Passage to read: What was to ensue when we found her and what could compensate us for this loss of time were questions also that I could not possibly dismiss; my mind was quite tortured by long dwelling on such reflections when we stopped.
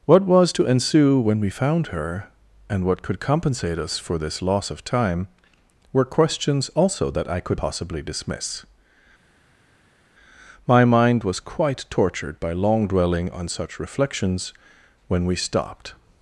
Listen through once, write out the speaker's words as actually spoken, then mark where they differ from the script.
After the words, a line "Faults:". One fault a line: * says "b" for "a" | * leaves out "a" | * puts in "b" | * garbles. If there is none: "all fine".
What was to ensue when we found her and what could compensate us for this loss of time were questions also that I could possibly dismiss; my mind was quite tortured by long dwelling on such reflections when we stopped.
Faults:
* leaves out "not"